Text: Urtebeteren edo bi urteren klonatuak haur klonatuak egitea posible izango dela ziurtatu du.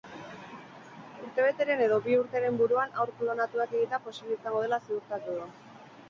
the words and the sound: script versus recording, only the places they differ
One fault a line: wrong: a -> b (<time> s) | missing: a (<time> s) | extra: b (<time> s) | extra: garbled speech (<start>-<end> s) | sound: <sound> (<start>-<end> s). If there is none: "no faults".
wrong: klonatuak -> buruan (2.6 s)